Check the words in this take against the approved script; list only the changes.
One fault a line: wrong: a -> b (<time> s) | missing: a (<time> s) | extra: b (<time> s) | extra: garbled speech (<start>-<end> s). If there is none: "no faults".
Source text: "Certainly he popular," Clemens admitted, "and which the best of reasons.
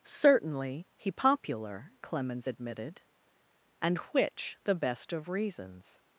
no faults